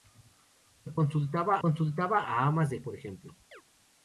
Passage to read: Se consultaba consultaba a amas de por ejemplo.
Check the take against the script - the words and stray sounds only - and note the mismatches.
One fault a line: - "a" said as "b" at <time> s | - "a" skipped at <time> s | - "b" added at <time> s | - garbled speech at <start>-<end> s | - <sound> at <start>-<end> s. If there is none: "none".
- chirp at 3.5-3.6 s